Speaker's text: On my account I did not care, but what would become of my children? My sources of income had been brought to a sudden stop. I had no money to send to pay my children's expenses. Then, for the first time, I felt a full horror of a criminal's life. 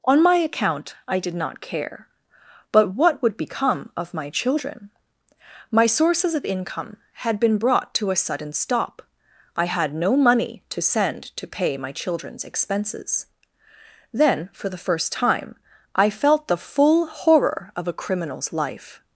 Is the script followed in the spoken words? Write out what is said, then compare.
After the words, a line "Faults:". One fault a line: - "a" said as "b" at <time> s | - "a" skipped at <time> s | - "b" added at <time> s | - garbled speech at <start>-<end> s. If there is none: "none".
On my account I did not care, but what would become of my children? My sources of income had been brought to a sudden stop. I had no money to send to pay my children's expenses. Then, for the first time, I felt the full horror of a criminal's life.
Faults:
- "a" said as "the" at 16.5 s